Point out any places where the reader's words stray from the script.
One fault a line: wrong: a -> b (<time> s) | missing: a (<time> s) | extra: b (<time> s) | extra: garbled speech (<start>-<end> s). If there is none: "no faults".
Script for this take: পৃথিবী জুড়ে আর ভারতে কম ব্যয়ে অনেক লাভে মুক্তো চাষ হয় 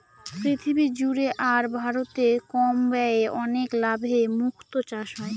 no faults